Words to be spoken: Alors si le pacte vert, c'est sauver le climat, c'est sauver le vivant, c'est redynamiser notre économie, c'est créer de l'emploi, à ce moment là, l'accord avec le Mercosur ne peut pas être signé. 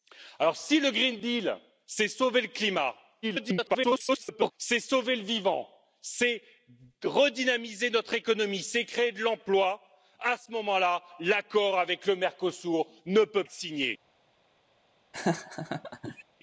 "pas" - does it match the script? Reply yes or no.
no